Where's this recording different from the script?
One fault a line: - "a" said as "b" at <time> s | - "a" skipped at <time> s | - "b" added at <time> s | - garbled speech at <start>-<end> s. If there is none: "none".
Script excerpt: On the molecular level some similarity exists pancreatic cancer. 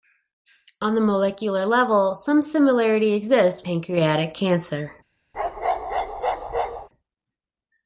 none